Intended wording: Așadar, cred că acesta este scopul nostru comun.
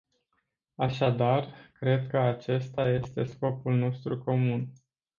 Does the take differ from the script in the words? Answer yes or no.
no